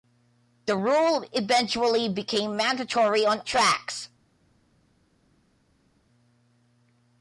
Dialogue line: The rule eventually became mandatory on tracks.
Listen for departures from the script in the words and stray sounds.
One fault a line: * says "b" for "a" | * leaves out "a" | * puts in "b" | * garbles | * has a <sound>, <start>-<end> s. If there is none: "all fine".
all fine